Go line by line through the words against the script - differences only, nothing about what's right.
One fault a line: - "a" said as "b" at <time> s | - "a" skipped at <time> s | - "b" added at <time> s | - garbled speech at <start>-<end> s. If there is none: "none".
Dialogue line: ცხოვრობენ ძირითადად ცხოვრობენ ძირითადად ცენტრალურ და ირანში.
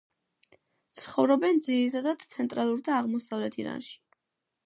- "ცხოვრობენ ძირითადად" skipped at 2.2 s
- "აღმოსავლეთ" added at 3.0 s